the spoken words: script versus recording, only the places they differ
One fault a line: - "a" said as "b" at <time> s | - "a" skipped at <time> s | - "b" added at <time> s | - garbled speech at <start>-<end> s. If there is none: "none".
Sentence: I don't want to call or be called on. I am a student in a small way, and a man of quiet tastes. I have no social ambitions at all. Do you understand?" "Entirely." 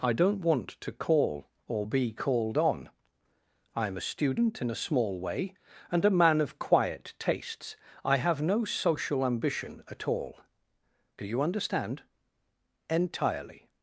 - "ambitions" said as "ambition" at 9.2 s